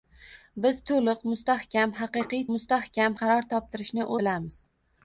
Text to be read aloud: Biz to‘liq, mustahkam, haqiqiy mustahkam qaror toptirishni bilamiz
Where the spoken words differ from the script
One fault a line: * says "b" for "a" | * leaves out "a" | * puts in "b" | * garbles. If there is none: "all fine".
all fine